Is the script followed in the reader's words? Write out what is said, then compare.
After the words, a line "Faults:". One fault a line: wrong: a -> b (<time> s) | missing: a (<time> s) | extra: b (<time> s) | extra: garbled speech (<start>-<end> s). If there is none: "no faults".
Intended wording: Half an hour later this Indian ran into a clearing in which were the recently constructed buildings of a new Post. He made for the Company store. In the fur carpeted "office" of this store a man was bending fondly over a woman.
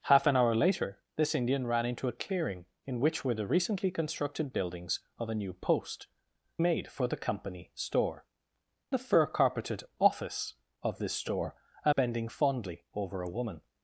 Half an hour later this Indian ran into a clearing in which were the recently constructed buildings of a new Post. Made for the Company store. The fur carpeted "office" of this store a bending fondly over a woman.
Faults:
missing: He (6.1 s)
missing: In (8.2 s)
missing: man was (11.9 s)